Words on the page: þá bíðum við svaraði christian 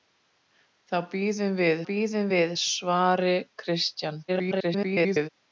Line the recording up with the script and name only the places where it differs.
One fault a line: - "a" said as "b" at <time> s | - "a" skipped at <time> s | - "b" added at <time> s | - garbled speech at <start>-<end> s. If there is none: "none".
- "bíðum við" added at 1.9 s
- garbled speech at 4.3-5.3 s